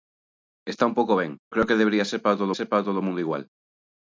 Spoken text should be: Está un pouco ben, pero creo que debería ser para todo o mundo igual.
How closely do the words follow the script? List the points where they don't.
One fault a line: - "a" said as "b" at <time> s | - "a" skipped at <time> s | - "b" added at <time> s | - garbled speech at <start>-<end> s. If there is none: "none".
- "pero" skipped at 1.3 s
- "ser para todo" added at 2.6 s